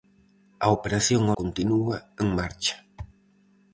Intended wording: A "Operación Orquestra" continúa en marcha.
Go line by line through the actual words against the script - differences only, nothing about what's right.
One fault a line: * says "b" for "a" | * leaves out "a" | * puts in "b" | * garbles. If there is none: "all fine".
* leaves out "Orquestra"